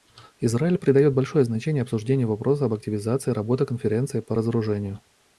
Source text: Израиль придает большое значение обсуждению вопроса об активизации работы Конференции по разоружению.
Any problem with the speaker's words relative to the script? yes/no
no